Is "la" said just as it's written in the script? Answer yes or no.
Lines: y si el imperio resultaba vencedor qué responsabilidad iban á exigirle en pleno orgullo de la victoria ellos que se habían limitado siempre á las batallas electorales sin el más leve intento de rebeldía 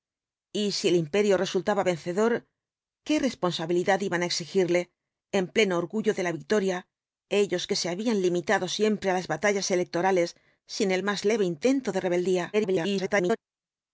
yes